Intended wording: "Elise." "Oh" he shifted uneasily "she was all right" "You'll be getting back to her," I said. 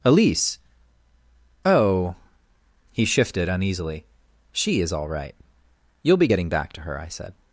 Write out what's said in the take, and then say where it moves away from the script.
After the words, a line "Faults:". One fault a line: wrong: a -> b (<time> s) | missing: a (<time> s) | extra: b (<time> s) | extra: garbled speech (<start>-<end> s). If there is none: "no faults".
"Elise." "Oh" he shifted uneasily "she is all right" "You'll be getting back to her," I said.
Faults:
wrong: was -> is (4.8 s)